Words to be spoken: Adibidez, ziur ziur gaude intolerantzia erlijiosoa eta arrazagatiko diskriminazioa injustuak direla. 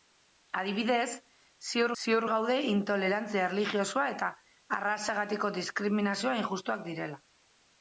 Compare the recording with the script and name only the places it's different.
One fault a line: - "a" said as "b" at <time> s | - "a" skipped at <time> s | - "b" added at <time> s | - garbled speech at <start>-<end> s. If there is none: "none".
none